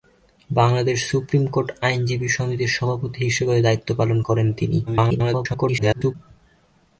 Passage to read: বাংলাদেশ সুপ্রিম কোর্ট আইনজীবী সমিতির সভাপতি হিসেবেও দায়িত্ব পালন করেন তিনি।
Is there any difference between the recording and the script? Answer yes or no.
yes